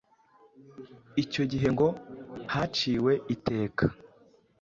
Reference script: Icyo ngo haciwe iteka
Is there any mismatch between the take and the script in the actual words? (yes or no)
yes